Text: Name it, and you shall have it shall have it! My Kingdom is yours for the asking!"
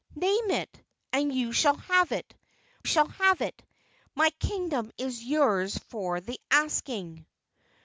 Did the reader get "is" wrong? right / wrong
right